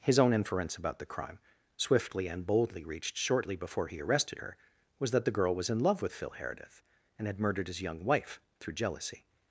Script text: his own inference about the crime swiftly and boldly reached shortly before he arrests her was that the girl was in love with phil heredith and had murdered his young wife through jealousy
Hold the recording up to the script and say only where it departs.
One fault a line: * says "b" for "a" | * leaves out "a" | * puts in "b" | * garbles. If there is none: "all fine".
* says "arrested" for "arrests"